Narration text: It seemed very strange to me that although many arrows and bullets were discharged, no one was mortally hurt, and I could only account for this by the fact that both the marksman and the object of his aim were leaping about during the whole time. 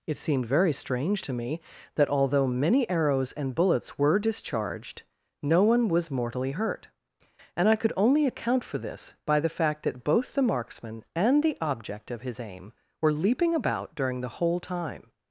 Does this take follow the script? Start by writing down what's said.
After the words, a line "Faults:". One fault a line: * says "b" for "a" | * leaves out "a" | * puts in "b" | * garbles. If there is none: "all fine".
It seemed very strange to me that although many arrows and bullets were discharged, no one was mortally hurt, and I could only account for this by the fact that both the marksman and the object of his aim were leaping about during the whole time.
Faults:
all fine